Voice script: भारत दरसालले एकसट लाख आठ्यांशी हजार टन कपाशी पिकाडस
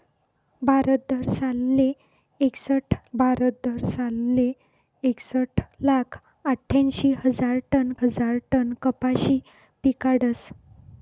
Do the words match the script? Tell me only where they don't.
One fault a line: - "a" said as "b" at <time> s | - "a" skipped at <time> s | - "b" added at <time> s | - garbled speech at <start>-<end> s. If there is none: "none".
- "भारत दरसालले एकसट" added at 3.1 s
- "हजार टन" added at 8.0 s